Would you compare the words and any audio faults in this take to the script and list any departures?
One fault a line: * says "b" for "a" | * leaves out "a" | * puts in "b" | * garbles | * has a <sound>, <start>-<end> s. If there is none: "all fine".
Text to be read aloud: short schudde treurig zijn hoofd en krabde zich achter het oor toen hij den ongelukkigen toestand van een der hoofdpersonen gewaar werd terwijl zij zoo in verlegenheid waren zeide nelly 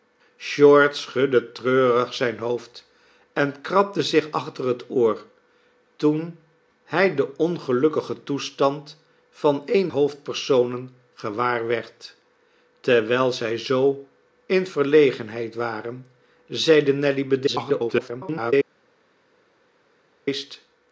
* leaves out "der"
* garbles